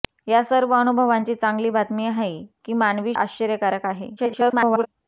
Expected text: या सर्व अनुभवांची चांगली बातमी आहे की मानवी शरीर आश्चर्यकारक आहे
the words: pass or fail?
fail